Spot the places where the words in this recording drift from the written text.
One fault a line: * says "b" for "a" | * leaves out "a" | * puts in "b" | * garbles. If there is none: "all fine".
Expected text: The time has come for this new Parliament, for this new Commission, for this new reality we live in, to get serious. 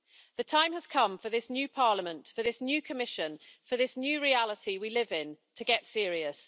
all fine